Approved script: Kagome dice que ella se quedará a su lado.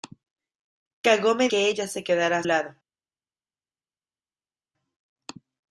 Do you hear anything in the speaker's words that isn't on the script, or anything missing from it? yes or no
yes